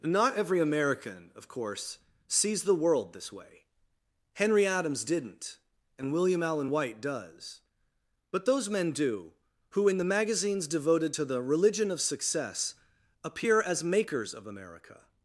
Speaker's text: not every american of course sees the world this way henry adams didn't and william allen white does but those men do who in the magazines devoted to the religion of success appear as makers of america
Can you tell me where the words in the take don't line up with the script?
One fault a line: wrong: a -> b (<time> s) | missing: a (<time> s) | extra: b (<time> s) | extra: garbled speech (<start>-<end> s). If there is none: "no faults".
no faults